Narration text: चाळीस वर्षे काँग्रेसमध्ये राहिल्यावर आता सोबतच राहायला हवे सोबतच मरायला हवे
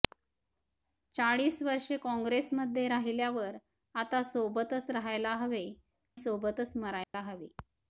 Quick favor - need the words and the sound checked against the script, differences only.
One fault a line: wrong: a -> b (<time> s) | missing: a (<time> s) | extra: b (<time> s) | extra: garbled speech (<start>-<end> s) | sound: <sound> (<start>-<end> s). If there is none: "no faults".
sound: dropout (7.0-7.1 s)